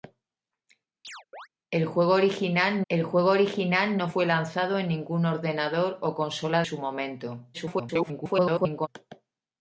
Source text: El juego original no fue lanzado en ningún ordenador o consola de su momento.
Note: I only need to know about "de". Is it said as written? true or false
false